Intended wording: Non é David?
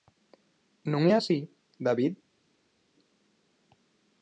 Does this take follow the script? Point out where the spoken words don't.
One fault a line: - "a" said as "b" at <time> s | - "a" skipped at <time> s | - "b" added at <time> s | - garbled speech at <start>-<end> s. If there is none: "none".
- "así" added at 1.2 s